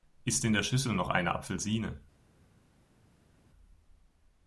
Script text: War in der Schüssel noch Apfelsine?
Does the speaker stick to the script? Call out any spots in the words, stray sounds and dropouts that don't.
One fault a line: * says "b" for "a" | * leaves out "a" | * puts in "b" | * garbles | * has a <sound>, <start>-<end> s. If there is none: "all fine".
* says "Ist" for "War"
* puts in "eine"